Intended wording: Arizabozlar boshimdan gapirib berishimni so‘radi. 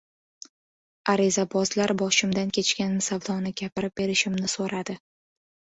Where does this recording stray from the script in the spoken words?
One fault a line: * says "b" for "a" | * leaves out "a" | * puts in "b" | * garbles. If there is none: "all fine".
* puts in "kechgan savdoni"